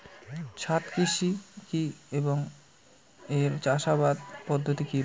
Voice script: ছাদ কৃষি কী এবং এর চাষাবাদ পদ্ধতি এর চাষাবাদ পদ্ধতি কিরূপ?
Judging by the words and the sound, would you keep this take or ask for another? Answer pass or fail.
fail